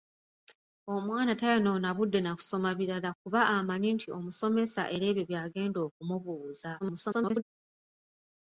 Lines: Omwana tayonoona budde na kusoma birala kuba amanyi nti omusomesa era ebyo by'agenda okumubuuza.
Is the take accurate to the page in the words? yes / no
no